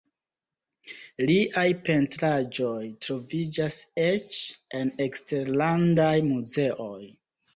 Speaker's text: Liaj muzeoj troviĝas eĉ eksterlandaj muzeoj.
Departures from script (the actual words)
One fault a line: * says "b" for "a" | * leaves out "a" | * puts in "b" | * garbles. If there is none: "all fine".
* says "pentraĵoj" for "muzeoj"
* puts in "en"